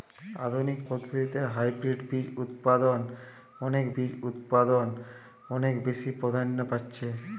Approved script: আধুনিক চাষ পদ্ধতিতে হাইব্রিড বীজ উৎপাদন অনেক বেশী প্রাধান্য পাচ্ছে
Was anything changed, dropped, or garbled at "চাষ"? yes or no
yes